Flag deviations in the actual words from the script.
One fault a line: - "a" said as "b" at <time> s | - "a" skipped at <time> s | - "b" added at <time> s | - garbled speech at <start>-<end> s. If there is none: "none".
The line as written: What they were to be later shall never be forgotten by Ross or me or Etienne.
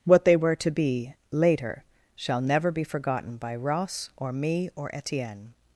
none